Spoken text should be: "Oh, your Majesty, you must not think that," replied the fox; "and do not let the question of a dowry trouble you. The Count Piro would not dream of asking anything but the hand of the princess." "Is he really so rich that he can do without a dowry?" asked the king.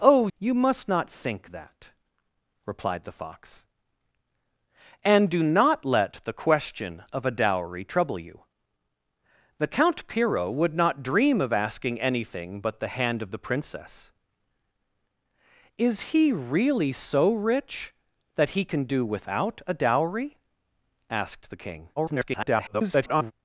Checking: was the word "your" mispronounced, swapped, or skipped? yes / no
yes